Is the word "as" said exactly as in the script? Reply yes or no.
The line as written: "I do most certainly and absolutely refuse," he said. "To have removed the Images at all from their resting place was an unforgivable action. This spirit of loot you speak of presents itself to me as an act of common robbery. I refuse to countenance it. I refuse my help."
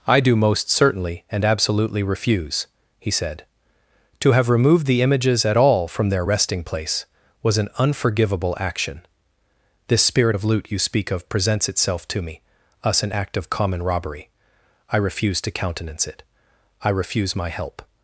no